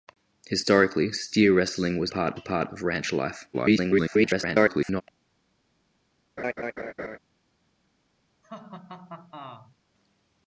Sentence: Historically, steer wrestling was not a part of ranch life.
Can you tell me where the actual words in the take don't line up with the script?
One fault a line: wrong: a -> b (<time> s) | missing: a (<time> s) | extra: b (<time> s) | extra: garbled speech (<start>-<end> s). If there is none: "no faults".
wrong: not -> part (2.1 s)
extra: garbled speech (3.5-5.0 s)